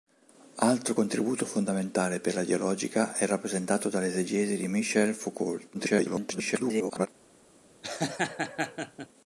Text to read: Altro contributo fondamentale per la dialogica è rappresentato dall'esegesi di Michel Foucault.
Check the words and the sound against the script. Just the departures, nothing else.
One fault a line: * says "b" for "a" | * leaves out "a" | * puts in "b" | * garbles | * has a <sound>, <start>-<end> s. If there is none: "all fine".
* garbles
* has a laugh, 7.8-9.1 s